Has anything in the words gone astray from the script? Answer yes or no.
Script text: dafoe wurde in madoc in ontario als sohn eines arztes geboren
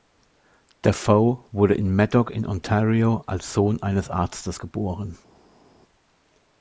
no